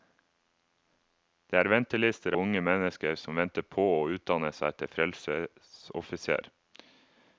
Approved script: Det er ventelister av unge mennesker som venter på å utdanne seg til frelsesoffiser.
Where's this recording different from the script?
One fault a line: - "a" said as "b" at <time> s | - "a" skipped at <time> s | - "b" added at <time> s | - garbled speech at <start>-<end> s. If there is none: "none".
- "av" skipped at 2.4 s